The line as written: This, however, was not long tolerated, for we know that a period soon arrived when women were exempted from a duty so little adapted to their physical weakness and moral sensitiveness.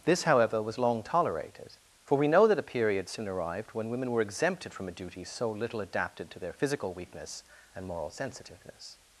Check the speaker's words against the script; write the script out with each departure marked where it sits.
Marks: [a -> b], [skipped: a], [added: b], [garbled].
This, however, was [skipped: not] long tolerated, for we know that a period soon arrived when women were exempted from a duty so little adapted to their physical weakness and moral sensitiveness.